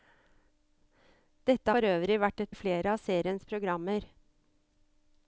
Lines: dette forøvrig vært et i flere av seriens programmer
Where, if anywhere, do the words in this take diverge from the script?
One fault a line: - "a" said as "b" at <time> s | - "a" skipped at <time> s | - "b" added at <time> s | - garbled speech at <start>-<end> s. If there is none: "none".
none